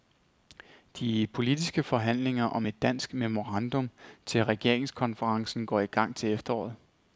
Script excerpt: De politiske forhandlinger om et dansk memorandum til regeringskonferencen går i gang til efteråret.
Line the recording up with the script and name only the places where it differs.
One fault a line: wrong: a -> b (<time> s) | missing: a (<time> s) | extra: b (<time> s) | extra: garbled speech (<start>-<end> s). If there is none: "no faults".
no faults